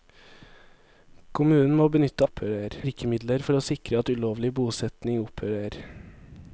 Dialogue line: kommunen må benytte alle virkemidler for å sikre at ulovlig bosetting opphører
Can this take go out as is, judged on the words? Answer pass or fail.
fail